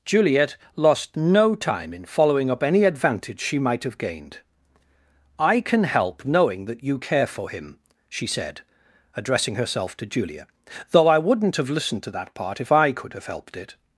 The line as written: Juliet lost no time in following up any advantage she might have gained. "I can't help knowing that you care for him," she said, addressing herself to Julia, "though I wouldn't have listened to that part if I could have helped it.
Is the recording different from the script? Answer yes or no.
yes